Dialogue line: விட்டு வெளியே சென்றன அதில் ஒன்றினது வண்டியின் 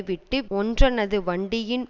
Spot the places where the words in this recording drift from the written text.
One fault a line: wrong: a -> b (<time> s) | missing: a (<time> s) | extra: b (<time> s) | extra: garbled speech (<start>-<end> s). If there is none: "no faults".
missing: வெளியே சென்றன அதில் (0.5 s)